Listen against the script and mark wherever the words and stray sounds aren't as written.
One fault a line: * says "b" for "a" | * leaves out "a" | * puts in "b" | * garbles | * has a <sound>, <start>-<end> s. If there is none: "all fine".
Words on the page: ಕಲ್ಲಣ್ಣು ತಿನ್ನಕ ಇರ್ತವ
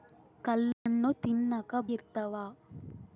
* has a dropout, 0.7-0.9 s